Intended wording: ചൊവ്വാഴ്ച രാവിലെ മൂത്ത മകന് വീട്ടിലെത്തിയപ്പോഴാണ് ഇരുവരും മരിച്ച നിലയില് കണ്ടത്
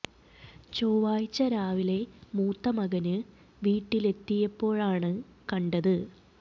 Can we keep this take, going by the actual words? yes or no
no